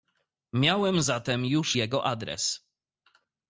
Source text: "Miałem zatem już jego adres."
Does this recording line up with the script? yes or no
yes